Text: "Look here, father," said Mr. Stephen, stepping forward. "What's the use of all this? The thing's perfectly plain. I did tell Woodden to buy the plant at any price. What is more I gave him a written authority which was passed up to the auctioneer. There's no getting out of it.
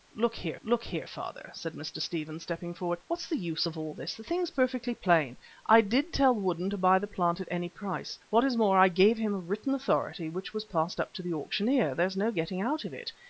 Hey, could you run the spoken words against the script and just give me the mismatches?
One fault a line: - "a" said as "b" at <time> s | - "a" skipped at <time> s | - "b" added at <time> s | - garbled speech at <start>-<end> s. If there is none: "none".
- "look here" added at 0.6 s